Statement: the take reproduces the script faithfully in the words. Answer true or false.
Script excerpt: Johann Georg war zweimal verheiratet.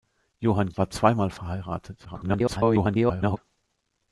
false